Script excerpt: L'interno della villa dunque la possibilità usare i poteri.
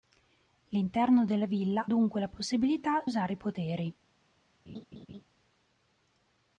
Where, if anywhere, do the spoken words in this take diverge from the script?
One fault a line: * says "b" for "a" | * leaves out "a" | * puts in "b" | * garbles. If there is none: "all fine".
all fine